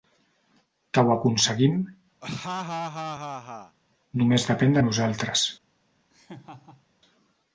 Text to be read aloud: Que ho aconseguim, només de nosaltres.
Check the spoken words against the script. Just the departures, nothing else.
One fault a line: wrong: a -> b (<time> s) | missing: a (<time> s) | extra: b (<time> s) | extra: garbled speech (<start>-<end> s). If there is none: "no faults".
extra: depèn (4.5 s)